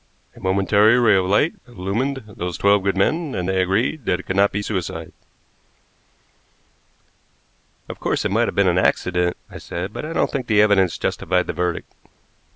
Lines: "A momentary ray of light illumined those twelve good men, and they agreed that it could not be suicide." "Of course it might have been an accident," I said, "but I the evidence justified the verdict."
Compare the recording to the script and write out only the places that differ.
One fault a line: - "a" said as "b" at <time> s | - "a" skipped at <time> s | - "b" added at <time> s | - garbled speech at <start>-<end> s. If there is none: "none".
- "don't think" added at 10.1 s